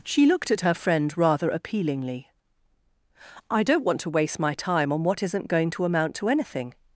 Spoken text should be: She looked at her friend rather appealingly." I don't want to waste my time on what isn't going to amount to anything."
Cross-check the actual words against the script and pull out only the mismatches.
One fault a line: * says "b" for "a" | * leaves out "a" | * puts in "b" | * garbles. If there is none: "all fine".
all fine